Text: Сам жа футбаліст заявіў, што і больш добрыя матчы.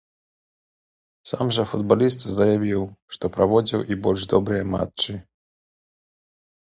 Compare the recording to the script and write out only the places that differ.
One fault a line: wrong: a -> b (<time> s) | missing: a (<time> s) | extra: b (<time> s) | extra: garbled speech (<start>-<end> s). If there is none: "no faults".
extra: праводзіў (3.4 s)